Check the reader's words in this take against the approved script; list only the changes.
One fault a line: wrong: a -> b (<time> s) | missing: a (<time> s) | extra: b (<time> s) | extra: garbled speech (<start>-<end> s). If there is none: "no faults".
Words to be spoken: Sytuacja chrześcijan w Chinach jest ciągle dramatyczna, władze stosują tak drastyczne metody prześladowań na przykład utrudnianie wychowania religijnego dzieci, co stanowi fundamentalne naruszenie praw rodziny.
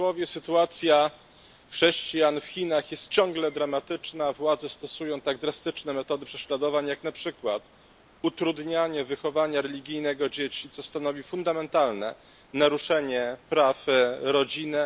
extra: jak (6.9 s)